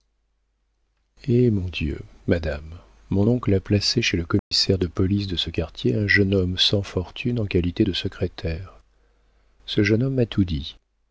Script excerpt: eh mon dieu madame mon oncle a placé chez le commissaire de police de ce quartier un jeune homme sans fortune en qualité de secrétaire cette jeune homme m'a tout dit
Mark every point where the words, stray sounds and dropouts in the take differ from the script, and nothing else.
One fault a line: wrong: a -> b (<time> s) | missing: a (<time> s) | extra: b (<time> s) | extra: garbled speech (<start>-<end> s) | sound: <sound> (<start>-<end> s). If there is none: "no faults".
sound: dropout (4.4-4.5 s)
wrong: cette -> ce (9.7 s)